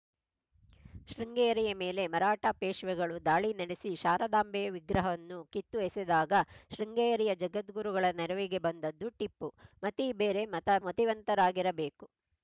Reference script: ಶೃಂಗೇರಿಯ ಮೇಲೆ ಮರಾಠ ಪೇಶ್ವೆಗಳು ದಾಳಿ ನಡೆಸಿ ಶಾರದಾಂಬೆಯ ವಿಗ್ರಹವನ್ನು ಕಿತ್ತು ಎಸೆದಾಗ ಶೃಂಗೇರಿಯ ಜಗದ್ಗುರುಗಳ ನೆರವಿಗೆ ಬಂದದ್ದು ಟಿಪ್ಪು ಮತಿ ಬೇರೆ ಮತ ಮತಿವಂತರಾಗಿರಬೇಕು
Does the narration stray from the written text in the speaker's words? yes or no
no